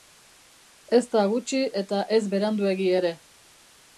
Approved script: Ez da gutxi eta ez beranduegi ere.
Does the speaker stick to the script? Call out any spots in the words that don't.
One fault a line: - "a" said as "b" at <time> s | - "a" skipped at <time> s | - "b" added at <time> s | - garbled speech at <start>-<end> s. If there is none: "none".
none